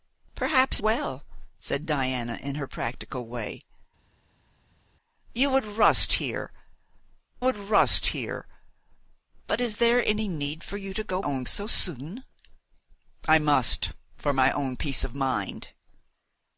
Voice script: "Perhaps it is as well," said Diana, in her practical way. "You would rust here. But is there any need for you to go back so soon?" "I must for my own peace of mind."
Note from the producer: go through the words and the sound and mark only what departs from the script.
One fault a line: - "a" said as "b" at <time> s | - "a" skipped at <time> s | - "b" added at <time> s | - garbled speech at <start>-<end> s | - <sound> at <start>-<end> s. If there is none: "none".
- "it is as" skipped at 0.8 s
- "would rust here" added at 7.4 s
- "back" said as "own" at 11.2 s